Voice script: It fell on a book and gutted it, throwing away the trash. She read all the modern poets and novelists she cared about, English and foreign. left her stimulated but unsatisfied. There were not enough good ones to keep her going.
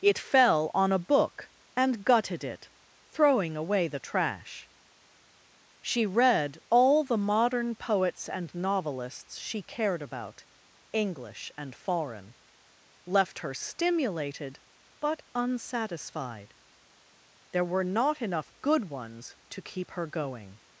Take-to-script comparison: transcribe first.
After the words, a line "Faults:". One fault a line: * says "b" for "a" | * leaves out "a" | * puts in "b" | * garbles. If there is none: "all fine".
It fell on a book and gutted it, throwing away the trash. She read all the modern poets and novelists she cared about, English and foreign. left her stimulated but unsatisfied. There were not enough good ones to keep her going.
Faults:
all fine